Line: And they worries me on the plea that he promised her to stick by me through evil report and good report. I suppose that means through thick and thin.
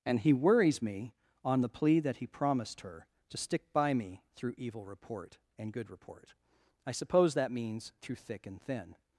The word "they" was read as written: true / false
false